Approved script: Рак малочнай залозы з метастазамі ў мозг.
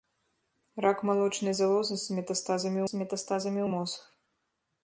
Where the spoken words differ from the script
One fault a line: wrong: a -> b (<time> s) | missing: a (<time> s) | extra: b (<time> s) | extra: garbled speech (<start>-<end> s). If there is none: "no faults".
extra: з метастазамі (2.9 s)